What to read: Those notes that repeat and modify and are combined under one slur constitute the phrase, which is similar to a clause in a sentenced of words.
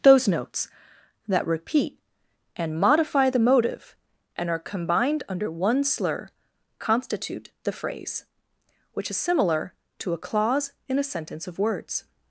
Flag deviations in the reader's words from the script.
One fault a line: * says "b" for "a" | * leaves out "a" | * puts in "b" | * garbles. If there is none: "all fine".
* puts in "the motive"
* says "sentence" for "sentenced"